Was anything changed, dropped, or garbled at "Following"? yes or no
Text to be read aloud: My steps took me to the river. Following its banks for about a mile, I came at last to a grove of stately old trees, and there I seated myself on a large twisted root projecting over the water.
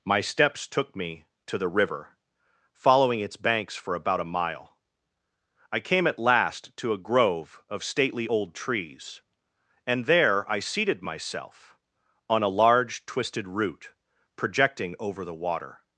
no